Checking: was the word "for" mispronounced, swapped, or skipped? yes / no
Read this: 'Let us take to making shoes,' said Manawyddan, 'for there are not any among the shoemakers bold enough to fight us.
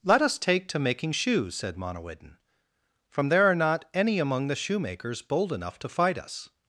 yes